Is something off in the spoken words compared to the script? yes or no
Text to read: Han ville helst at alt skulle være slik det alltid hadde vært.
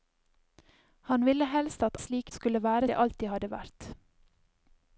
yes